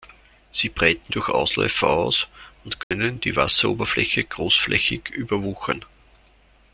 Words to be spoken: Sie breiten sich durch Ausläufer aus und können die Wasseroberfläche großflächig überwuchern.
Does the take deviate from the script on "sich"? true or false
true